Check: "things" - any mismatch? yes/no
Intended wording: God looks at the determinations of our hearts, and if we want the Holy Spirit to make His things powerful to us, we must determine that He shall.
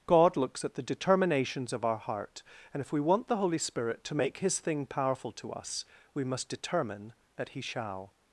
yes